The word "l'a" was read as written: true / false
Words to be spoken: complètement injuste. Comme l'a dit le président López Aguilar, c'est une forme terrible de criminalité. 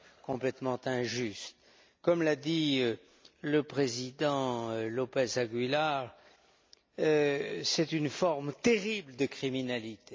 true